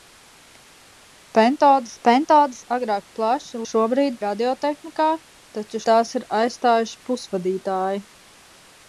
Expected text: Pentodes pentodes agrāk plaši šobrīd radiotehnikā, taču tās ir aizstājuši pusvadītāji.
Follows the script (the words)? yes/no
yes